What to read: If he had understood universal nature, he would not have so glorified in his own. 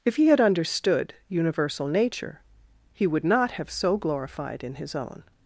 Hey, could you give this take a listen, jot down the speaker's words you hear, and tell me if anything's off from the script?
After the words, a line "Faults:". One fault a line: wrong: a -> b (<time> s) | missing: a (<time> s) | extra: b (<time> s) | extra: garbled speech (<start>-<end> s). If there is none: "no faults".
If he had understood universal nature, he would not have so glorified in his own.
Faults:
no faults